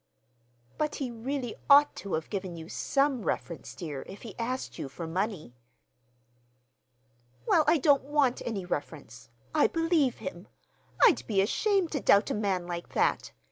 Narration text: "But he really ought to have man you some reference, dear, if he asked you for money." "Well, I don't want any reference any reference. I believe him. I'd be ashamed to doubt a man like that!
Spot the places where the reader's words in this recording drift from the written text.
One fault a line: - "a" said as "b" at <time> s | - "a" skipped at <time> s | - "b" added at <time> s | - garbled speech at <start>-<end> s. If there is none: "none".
- "man" said as "given" at 2.3 s
- "any reference" skipped at 9.3 s